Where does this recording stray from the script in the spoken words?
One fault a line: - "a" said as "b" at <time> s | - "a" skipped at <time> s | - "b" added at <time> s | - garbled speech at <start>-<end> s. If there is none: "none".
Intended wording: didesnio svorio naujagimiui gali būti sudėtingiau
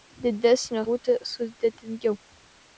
- "svorio naujagimiui gali" skipped at 0.8 s